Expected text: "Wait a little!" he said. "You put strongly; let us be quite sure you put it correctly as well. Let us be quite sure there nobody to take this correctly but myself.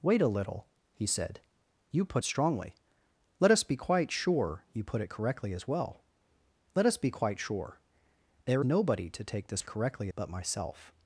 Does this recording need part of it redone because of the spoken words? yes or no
no